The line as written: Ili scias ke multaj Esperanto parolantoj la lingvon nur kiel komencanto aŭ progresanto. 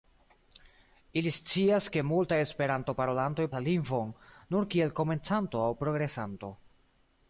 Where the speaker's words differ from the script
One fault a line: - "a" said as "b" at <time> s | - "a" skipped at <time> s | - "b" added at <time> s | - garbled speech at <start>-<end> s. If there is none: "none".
none